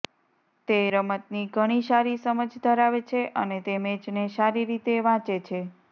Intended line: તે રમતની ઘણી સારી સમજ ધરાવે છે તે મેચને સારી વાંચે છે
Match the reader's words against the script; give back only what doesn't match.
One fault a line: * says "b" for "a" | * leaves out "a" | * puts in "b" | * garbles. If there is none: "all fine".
* puts in "અને"
* puts in "રીતે"